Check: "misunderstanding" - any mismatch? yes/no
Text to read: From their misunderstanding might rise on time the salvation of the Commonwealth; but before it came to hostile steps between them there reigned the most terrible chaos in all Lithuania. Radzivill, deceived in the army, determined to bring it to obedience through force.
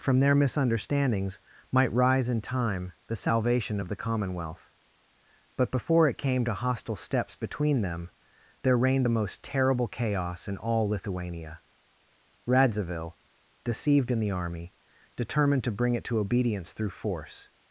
yes